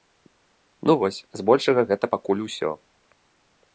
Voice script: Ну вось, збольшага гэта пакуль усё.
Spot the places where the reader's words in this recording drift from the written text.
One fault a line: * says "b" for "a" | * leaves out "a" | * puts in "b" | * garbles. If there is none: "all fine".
all fine